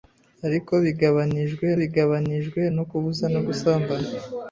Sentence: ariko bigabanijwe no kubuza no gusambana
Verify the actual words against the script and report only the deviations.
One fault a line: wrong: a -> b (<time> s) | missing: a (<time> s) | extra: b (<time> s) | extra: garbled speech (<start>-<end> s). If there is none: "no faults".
extra: bigabanijwe (1.8 s)